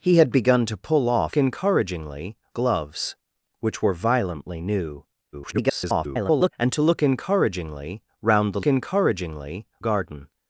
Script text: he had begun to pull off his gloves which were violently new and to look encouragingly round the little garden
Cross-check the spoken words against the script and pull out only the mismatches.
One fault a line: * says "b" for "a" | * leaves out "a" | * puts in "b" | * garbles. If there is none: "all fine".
* says "encouragingly" for "his"
* garbles
* says "encouragingly" for "little"